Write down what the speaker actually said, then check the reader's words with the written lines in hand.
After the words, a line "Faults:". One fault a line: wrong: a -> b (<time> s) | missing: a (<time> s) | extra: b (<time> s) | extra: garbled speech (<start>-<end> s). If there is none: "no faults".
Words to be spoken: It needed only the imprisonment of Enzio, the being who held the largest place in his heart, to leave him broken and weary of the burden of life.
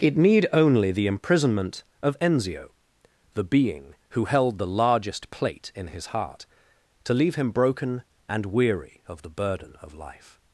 It need only the imprisonment of Enzio, the being who held the largest plate in his heart, to leave him broken and weary of the burden of life.
Faults:
wrong: needed -> need (0.2 s)
wrong: place -> plate (5.3 s)